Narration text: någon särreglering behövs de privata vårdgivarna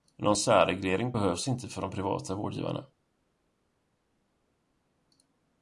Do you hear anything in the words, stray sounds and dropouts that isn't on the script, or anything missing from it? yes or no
yes